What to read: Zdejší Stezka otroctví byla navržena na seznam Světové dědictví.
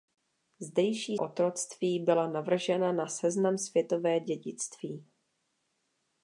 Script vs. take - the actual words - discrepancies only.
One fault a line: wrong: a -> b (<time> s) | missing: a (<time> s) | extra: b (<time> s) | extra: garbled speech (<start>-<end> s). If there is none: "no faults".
missing: Stezka (1.2 s)